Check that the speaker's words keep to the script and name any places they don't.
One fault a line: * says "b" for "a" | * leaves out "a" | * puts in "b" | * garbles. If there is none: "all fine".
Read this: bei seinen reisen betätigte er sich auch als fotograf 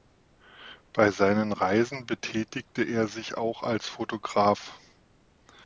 all fine